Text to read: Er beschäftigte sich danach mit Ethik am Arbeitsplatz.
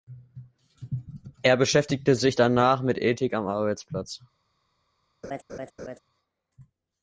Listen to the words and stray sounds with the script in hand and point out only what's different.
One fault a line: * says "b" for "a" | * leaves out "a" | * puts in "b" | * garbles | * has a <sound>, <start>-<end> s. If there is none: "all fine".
* has a laugh, 5.2-6.0 s